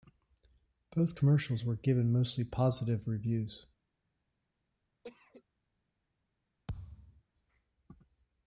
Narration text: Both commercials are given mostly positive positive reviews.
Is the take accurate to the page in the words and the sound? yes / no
no